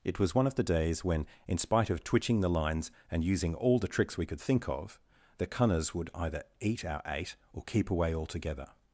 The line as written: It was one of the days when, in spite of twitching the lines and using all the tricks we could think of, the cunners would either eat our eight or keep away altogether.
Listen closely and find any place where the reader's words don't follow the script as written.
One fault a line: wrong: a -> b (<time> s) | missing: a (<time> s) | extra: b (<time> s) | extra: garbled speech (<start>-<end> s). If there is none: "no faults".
no faults